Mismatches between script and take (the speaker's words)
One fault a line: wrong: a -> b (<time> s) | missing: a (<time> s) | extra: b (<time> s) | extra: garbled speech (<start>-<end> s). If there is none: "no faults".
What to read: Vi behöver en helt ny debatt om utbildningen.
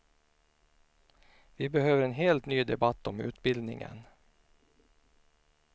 no faults